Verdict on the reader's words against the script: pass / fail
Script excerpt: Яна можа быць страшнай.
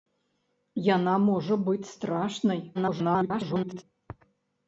fail